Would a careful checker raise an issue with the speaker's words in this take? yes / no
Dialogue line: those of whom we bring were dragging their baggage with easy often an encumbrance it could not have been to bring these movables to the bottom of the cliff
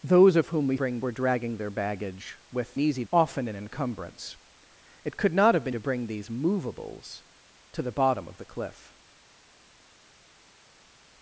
no